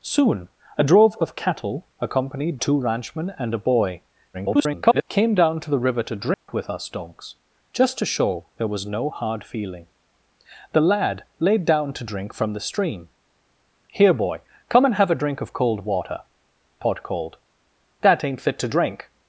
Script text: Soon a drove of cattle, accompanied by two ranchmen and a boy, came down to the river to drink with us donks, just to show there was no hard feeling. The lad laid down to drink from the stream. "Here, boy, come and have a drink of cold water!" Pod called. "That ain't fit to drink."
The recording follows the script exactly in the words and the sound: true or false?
false